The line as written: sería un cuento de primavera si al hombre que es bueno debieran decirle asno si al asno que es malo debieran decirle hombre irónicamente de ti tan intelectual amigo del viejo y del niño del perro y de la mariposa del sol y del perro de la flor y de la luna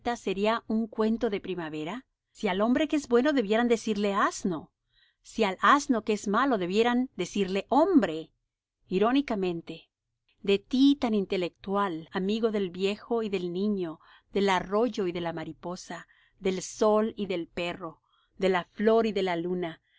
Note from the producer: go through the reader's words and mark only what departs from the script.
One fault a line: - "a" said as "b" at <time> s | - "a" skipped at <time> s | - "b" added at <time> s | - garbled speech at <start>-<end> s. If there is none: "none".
- "perro" said as "arroyo" at 14.5 s